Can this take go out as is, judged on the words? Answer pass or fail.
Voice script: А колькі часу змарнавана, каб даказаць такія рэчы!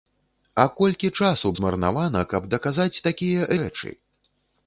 pass